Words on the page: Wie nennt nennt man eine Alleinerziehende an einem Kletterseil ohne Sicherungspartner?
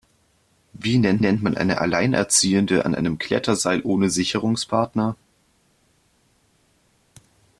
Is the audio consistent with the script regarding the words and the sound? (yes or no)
yes